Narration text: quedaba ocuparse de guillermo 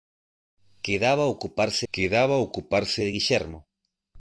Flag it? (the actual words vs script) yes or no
yes